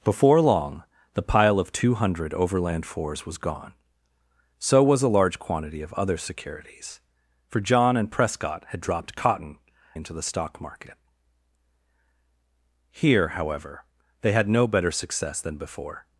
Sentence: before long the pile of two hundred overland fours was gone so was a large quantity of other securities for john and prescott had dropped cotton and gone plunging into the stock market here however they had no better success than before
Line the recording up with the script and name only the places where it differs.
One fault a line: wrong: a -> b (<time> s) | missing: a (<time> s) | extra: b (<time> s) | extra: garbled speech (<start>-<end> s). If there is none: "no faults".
missing: and gone plunging (9.6 s)